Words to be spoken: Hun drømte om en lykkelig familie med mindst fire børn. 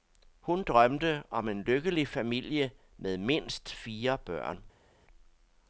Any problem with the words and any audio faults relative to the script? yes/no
no